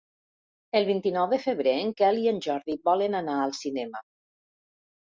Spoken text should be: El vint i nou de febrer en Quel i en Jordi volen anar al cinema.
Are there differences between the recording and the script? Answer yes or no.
no